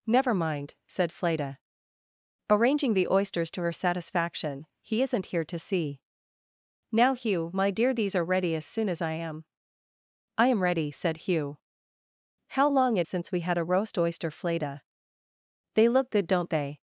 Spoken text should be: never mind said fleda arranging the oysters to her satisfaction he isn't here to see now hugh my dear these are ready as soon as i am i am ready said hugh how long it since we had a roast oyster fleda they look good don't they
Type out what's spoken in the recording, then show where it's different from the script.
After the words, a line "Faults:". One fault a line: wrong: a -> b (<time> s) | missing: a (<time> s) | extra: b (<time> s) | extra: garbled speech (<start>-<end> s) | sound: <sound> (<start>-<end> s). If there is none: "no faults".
never mind said fleda arranging the oysters to her satisfaction he isn't here to see now hugh my dear these are ready as soon as i am i am ready said hugh how long it since we had a roast oyster fleda they look good don't they
Faults:
no faults